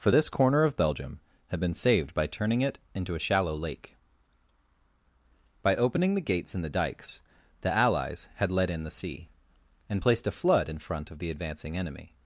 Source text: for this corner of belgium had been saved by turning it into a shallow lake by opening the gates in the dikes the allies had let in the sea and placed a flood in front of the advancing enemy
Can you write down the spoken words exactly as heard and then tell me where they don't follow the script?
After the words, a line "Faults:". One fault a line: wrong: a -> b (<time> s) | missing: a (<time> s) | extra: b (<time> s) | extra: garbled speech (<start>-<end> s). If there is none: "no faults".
for this corner of belgium had been saved by turning it into a shallow lake by opening the gates in the dikes the allies had let in the sea and placed a flood in front of the advancing enemy
Faults:
no faults